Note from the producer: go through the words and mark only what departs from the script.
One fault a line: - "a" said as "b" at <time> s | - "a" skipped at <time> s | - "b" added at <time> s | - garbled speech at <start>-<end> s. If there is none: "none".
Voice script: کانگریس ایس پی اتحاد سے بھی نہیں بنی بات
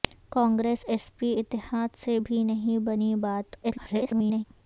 - garbled speech at 3.6-4.4 s